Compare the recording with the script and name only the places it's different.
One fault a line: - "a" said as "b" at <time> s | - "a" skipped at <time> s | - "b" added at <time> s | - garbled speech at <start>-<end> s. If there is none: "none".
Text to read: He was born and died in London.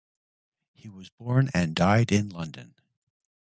none